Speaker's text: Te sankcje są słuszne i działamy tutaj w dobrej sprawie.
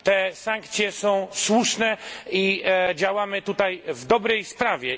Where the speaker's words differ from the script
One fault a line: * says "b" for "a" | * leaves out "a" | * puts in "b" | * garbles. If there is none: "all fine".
all fine